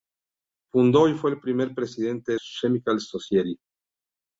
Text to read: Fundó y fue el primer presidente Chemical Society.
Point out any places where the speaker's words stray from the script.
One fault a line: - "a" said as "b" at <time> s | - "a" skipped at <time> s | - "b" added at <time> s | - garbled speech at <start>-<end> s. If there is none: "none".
none